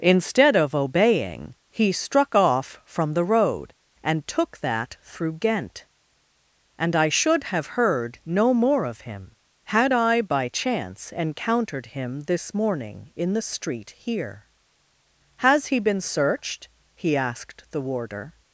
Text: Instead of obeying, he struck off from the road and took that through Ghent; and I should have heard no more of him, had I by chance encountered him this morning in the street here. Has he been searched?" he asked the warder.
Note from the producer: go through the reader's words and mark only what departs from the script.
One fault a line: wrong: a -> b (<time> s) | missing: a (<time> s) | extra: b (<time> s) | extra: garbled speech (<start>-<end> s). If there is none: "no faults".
no faults